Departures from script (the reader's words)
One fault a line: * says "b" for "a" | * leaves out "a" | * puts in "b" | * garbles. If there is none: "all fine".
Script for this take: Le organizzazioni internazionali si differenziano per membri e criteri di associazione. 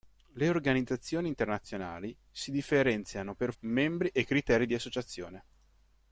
all fine